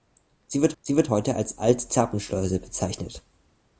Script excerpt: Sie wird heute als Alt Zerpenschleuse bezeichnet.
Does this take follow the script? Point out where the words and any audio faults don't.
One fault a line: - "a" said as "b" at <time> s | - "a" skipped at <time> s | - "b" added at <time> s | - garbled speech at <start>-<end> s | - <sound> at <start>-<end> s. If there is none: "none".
- "sie wird" added at 0.8 s